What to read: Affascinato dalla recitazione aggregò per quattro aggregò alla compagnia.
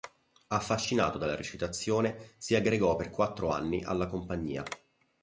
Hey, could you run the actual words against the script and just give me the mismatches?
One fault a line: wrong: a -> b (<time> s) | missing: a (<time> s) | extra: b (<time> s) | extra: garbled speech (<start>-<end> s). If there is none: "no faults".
extra: si (2.4 s)
wrong: aggregò -> anni (3.5 s)